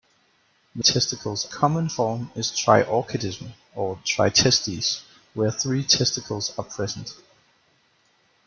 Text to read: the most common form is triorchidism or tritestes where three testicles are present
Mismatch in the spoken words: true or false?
true